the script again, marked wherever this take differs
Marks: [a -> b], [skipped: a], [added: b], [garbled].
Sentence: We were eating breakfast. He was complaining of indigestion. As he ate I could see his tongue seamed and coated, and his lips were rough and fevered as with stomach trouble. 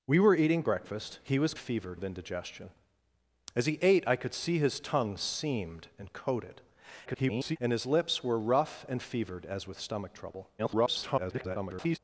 We were eating breakfast. He was [complaining -> fevered] of indigestion. As he ate I could see his tongue seamed and coated, [garbled] and his lips were rough and fevered as with stomach trouble. [garbled]